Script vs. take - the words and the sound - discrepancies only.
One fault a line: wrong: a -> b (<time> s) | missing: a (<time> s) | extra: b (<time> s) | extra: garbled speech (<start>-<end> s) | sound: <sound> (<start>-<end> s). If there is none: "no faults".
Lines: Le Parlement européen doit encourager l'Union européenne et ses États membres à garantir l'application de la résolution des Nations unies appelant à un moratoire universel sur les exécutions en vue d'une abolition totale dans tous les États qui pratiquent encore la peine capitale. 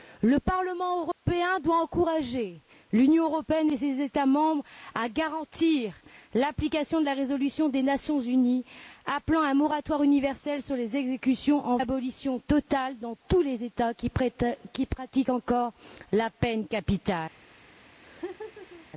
sound: dropout (1.1-1.2 s)
missing: vue d'une (11.8 s)
sound: laugh (18.0-18.9 s)